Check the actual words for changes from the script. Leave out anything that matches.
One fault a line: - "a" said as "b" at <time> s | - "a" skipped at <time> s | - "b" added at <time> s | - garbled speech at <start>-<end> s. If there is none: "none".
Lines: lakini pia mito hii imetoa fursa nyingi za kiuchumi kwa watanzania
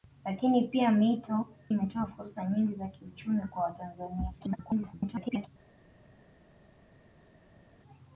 - "hii" skipped at 1.5 s
- garbled speech at 4.4-5.5 s